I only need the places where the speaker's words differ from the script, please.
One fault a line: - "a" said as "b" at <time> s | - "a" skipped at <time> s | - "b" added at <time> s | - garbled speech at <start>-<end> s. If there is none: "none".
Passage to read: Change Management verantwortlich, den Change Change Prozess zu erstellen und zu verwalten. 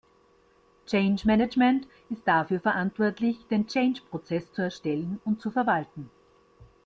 - "ist dafür" added at 2.1 s
- "Change" skipped at 4.0 s